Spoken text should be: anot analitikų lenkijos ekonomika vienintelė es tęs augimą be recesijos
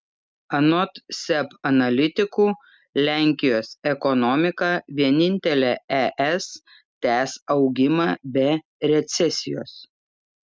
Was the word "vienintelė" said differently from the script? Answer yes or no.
no